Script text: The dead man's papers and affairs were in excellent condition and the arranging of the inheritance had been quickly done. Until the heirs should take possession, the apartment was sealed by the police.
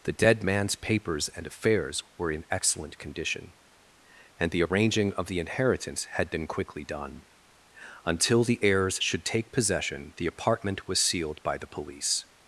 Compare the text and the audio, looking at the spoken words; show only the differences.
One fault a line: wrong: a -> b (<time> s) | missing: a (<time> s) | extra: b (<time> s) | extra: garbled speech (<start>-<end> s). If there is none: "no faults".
no faults